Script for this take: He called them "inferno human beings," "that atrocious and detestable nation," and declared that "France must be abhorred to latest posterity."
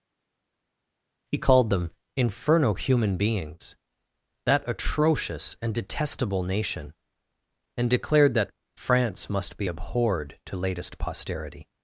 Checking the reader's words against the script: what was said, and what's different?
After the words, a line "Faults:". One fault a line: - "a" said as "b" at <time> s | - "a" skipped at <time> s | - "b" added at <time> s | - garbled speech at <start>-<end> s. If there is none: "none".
He called them "inferno human beings," "that atrocious and detestable nation," and declared that "France must be abhorred to latest posterity."
Faults:
none